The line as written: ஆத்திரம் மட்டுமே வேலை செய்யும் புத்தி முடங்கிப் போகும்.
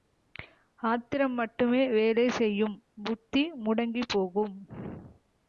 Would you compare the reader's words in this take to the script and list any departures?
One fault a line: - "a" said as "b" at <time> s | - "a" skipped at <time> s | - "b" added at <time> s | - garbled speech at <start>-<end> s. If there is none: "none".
none